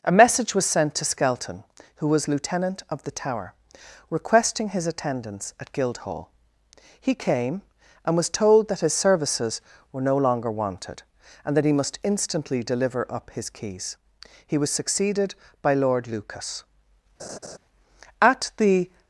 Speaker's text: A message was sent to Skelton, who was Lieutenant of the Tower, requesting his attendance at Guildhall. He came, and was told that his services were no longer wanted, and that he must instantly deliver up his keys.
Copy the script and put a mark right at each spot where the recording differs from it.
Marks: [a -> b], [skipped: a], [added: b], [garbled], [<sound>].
A message was sent to Skelton, who was Lieutenant of the Tower, requesting his attendance at Guildhall. He came, and was told that his services were no longer wanted, and that he must instantly deliver up his keys. [added: He was succeeded by Lord Lucas At the] [laugh]